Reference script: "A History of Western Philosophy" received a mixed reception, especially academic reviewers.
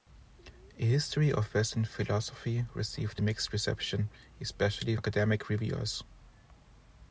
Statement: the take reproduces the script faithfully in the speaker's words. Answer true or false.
true